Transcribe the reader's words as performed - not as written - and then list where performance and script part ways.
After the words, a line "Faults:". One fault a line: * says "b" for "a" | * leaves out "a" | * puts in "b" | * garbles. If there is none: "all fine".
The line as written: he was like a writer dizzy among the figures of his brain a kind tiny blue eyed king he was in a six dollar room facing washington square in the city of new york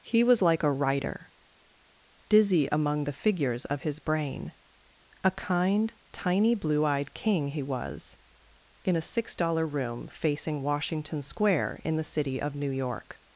he was like a writer dizzy among the figures of his brain a kind tiny blue eyed king he was in a six dollar room facing washington square in the city of new york
Faults:
all fine